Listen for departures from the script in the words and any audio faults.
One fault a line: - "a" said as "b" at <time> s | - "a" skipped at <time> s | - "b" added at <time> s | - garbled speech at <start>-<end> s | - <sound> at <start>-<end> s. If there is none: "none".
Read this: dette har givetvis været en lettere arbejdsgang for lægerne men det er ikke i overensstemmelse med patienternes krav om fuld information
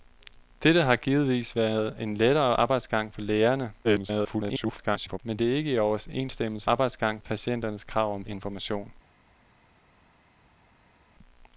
- garbled speech at 3.8-5.2 s
- "med" said as "arbejdsgang" at 6.7 s
- "fuld" skipped at 8.2 s